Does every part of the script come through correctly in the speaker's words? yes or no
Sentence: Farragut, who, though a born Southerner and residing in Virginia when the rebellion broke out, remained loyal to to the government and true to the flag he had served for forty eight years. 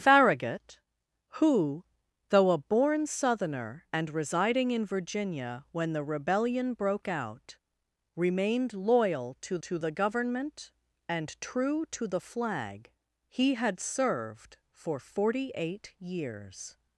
yes